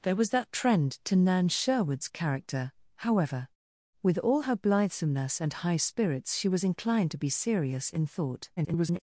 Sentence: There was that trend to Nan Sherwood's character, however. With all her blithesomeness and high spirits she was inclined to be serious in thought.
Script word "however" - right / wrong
right